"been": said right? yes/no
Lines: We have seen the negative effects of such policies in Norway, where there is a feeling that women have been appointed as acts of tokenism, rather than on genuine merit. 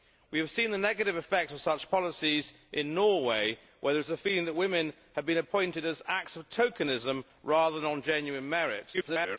yes